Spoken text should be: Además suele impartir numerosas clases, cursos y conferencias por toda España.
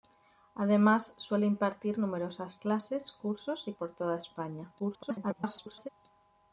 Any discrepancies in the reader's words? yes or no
yes